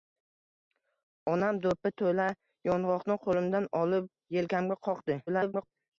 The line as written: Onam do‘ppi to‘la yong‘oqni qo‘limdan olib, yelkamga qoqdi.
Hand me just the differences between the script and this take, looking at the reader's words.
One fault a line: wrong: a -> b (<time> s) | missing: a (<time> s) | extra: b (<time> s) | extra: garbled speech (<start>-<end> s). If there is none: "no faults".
extra: garbled speech (5.3-5.7 s)